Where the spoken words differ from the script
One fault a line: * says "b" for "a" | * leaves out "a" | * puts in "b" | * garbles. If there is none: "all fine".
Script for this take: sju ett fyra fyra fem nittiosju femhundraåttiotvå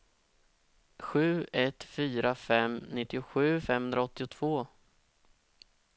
* leaves out "fyra"